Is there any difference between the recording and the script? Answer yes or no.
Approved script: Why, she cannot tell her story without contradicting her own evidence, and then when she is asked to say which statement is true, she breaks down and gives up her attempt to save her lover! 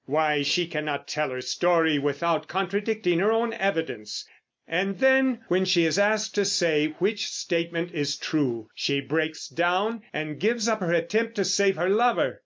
no